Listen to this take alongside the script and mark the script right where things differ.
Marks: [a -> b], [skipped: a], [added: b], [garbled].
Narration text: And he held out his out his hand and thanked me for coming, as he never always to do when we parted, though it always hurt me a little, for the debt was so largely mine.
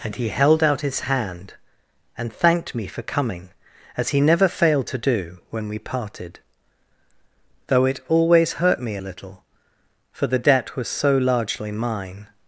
And he held out his [skipped: out his] hand and thanked me for coming, as he never [always -> failed] to do when we parted, though it always hurt me a little, for the debt was so largely mine.